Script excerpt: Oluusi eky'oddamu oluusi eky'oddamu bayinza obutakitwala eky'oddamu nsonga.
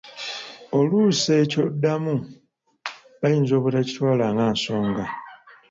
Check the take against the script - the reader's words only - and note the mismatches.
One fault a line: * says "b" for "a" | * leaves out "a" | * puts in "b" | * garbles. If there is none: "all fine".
* leaves out "oluusi eky'oddamu"
* says "nga" for "eky'oddamu"